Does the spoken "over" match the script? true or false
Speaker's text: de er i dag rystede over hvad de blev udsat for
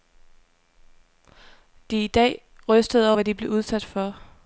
false